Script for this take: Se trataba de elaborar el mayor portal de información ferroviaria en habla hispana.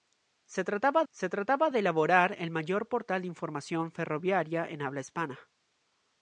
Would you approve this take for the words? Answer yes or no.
no